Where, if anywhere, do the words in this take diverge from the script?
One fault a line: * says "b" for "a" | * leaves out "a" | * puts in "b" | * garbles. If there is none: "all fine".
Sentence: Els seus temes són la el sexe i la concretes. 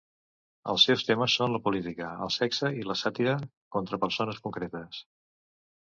* puts in "política"
* puts in "sàtira contra persones"